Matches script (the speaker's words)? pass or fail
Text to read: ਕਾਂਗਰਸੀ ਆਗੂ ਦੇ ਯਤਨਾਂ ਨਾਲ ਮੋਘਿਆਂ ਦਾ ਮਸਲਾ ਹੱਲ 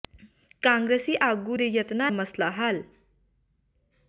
fail